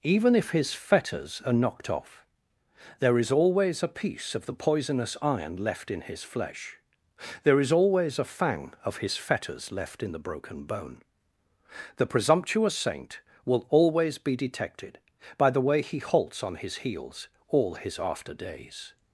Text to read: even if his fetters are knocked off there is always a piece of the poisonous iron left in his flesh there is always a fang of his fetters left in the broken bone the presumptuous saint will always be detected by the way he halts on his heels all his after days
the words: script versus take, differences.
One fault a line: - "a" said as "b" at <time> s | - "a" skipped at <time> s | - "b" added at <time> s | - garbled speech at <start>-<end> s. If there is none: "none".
none